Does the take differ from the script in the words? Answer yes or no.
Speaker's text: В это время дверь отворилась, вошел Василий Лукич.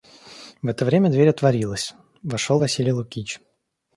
no